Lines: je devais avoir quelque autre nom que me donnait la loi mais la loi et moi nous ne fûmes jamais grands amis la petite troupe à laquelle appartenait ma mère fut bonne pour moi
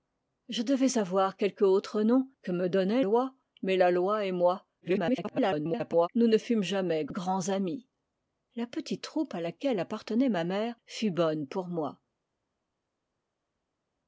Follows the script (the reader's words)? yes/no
no